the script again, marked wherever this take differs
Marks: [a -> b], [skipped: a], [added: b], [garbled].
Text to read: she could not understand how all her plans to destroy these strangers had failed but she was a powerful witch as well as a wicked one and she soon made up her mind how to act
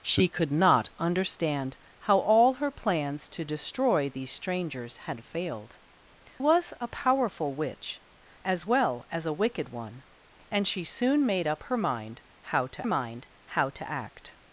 she could not understand how all her plans to destroy these strangers had failed [skipped: but she] was a powerful witch as well as a wicked one and she soon made up her mind how to [added: mind how to] act